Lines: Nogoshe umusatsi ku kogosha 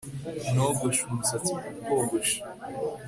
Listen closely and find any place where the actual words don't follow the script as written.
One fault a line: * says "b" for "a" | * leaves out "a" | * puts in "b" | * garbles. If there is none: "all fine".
all fine